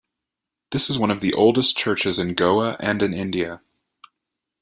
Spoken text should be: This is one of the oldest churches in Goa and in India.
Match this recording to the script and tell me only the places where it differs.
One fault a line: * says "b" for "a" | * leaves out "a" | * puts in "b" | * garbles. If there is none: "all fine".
all fine